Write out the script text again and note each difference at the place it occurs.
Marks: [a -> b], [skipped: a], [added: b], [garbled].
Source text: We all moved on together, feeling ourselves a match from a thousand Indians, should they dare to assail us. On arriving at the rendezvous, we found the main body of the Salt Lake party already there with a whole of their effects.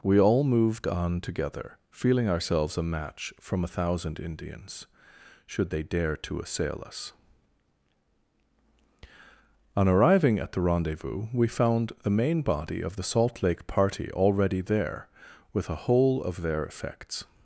We all moved on together, feeling ourselves a match from a thousand Indians, should they dare to assail us. On arriving at the rendezvous, we found the main body of the Salt Lake party already there with a whole of their effects.